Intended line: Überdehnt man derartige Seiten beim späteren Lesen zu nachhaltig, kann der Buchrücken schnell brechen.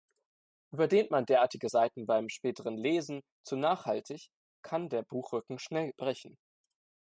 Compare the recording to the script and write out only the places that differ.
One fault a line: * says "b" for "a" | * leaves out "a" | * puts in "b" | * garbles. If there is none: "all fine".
all fine